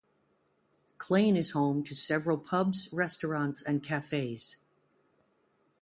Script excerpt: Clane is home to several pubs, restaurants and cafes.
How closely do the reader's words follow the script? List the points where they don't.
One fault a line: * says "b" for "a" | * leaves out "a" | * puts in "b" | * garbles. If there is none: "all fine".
all fine